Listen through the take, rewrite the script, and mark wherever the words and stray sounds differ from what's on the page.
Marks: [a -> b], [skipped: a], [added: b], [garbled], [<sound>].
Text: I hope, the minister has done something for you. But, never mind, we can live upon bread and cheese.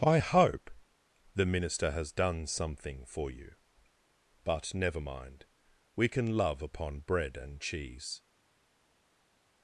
I hope, the minister has done something for you. But, never mind, we can [live -> love] upon bread and cheese.